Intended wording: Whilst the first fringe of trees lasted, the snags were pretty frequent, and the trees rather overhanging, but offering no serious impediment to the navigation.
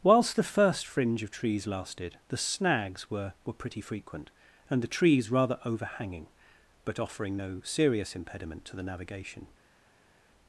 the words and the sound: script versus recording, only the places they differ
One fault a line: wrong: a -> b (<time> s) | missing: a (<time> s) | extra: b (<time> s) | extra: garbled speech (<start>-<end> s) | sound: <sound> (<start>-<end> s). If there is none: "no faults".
extra: were (3.4 s)